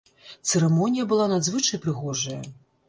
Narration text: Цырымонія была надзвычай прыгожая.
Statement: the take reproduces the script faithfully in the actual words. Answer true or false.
true